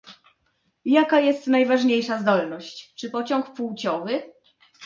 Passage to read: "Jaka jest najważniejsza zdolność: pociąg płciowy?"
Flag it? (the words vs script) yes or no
yes